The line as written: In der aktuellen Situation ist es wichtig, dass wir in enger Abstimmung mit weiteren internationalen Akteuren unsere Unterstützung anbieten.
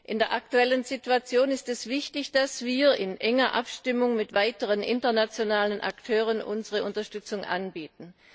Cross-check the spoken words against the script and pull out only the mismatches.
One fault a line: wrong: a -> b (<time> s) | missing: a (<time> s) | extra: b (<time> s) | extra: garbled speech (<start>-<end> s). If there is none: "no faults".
no faults